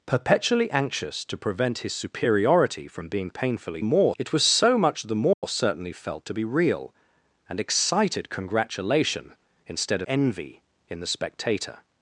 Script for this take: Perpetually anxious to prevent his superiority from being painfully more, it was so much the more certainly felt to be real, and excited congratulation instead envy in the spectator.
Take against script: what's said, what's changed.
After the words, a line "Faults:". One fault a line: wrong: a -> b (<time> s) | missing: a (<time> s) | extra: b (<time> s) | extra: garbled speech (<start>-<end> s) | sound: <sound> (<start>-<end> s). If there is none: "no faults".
Perpetually anxious to prevent his superiority from being painfully more, it was so much the more certainly felt to be real, and excited congratulation instead envy in the spectator.
Faults:
sound: dropout (5.3-5.4 s)